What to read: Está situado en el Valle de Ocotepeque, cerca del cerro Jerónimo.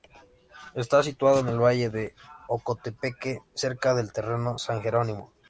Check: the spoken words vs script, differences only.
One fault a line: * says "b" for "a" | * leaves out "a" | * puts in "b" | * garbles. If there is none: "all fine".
* puts in "San"